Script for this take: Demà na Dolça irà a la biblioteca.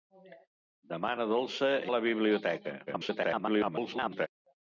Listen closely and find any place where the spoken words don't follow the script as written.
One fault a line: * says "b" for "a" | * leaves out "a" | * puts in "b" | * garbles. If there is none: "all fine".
* leaves out "irà"
* garbles